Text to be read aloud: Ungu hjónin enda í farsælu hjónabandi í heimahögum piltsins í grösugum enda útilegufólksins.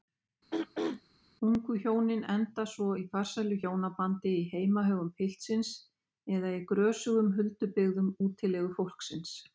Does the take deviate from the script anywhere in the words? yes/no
yes